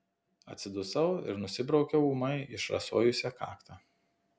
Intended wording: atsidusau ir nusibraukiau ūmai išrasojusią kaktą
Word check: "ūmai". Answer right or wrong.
right